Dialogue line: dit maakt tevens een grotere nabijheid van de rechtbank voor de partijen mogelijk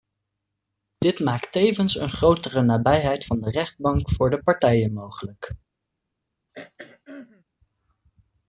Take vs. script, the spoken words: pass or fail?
pass